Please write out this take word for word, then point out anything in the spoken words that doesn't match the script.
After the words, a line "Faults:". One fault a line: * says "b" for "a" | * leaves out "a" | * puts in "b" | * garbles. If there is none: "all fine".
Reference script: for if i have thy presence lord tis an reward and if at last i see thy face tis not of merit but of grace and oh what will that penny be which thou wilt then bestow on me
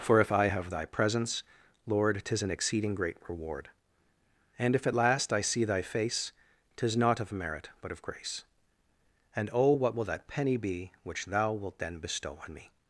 for if i have thy presence lord tis an exceeding great reward and if at last i see thy face tis not of merit but of grace and oh what will that penny be which thou wilt then bestow on me
Faults:
* puts in "exceeding great"